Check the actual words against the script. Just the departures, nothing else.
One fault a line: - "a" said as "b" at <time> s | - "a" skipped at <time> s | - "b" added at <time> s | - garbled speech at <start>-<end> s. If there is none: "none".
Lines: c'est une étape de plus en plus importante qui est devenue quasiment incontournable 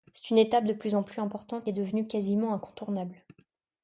- "qui" skipped at 1.7 s